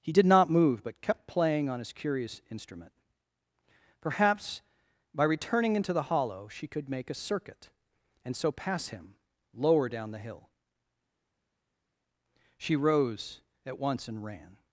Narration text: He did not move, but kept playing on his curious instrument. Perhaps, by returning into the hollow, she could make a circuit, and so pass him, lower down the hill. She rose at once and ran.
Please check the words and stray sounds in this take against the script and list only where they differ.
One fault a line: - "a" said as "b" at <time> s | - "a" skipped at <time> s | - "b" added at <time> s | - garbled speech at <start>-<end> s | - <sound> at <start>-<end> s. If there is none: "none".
none